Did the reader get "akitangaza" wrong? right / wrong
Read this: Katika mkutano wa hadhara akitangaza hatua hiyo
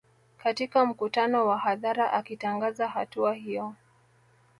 right